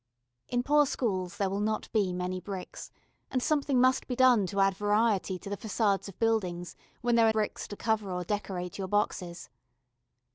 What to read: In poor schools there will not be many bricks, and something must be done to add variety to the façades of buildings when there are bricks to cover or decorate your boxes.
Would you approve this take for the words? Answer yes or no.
yes